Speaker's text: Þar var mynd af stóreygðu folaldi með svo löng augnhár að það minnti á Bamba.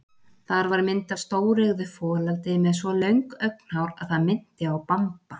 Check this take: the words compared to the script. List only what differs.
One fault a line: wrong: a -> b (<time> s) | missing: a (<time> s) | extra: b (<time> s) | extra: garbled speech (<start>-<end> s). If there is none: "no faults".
no faults